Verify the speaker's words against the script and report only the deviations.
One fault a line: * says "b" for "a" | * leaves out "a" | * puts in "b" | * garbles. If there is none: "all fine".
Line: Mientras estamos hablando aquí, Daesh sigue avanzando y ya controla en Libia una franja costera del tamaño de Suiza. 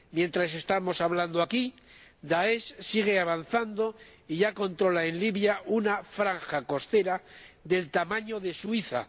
all fine